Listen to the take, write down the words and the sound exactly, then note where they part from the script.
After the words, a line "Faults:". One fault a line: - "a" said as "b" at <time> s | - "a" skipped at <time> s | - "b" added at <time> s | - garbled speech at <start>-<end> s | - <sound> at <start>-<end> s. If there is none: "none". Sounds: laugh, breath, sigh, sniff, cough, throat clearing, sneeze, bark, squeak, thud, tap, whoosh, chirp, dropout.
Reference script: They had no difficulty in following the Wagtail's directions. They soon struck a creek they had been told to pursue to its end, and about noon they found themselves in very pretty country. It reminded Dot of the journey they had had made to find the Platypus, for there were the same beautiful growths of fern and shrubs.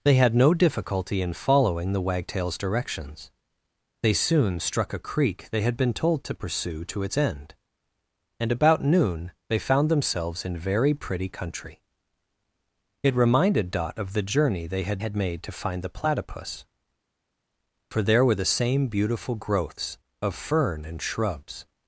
They had no difficulty in following the Wagtail's directions. They soon struck a creek they had been told to pursue to its end, and about noon they found themselves in very pretty country. It reminded Dot of the journey they had had made to find the Platypus, for there were the same beautiful growths of fern and shrubs.
Faults:
none